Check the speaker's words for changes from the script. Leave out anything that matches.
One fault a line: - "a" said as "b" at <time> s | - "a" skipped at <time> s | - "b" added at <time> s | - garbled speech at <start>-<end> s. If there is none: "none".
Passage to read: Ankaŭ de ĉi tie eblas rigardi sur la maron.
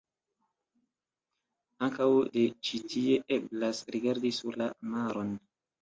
none